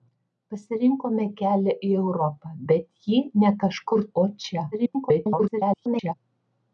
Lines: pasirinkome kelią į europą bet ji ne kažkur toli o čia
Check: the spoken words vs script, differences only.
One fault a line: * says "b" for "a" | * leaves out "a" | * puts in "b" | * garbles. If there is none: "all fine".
* leaves out "toli"
* garbles